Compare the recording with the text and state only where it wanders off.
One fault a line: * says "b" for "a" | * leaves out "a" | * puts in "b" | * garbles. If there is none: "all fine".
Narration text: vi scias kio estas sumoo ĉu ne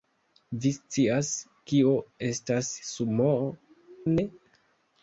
* leaves out "ĉu"